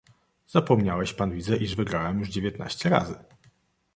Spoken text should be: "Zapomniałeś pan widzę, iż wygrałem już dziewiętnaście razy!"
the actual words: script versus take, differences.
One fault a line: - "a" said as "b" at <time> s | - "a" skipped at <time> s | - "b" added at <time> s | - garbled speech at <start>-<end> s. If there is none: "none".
none